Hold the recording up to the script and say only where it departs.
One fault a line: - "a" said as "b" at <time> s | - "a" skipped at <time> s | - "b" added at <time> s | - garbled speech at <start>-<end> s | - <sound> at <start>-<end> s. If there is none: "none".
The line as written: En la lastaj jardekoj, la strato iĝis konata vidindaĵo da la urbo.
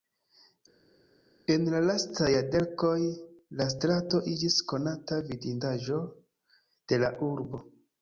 - "da" said as "de" at 6.9 s